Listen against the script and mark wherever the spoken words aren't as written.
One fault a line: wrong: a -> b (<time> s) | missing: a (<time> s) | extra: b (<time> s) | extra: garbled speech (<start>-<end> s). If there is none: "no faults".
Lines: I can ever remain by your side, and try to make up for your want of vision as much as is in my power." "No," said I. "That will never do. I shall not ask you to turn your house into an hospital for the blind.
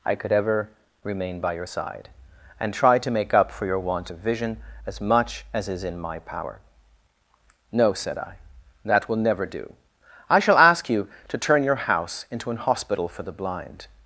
wrong: can -> could (0.1 s)
missing: not (10.6 s)